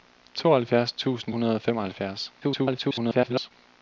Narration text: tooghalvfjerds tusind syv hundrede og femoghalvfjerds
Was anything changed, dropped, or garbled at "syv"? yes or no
yes